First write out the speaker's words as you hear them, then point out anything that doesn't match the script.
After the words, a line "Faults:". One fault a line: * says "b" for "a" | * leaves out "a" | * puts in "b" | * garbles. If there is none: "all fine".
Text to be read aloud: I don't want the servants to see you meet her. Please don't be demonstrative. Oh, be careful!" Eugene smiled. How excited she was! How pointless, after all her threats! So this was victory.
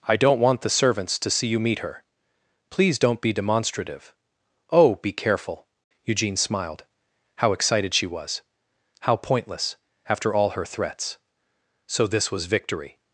I don't want the servants to see you meet her. Please don't be demonstrative. Oh, be careful!" Eugene smiled. How excited she was! How pointless, after all her threats! So this was victory.
Faults:
all fine